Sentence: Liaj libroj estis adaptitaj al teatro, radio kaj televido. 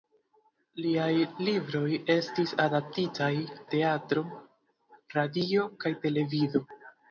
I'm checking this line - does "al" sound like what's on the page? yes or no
no